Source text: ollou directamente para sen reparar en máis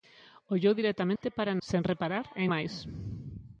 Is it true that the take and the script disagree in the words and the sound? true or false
true